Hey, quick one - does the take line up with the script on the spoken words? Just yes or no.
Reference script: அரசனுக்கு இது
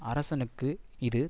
yes